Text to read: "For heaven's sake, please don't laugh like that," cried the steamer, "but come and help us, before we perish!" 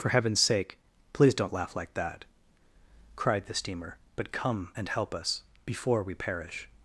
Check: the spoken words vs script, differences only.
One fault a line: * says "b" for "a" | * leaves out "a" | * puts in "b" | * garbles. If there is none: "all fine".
all fine